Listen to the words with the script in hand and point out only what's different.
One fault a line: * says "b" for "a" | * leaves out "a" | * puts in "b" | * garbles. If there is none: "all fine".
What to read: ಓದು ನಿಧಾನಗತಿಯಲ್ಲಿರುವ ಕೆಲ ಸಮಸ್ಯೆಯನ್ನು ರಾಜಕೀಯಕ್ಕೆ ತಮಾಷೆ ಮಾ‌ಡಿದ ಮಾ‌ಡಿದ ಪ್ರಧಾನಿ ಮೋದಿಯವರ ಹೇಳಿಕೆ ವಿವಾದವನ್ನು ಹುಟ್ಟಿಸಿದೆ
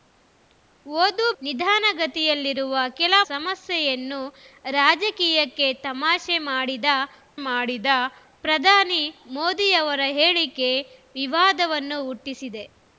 all fine